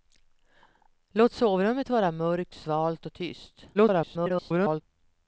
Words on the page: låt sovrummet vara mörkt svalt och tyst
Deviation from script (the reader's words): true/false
true